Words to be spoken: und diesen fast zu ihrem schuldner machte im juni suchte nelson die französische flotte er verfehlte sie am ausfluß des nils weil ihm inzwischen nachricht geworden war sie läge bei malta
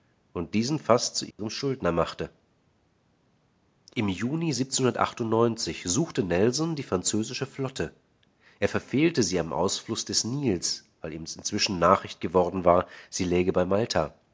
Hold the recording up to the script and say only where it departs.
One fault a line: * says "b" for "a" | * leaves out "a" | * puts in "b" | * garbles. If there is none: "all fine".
all fine